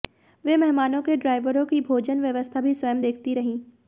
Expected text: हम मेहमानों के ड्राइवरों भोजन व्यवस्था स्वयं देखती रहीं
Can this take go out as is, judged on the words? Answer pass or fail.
fail